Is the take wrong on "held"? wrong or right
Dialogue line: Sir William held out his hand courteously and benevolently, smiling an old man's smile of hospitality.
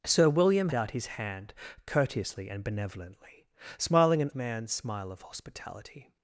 wrong